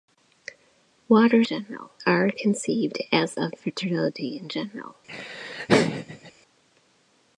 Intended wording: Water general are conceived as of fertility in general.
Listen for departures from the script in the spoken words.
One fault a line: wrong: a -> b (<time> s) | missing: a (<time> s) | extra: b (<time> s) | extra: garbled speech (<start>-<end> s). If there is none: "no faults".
no faults